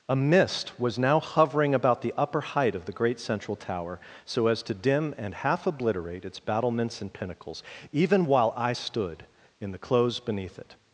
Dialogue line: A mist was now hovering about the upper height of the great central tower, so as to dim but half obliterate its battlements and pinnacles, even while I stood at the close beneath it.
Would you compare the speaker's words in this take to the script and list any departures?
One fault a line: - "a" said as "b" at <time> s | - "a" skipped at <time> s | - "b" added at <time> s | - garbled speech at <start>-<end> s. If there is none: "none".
- "but" said as "and" at 5.2 s
- "at" said as "in" at 9.6 s